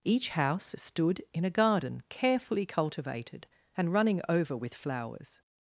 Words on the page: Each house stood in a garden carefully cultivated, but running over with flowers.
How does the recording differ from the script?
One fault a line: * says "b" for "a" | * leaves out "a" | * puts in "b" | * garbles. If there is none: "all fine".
* says "and" for "but"